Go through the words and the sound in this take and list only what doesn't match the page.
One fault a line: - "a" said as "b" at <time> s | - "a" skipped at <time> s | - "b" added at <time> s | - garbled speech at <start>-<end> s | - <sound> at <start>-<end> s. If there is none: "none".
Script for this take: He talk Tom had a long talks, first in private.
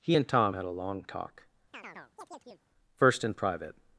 - "talk" said as "and" at 0.1 s
- "talks" said as "talk" at 1.0 s
- chirp at 1.7-2.6 s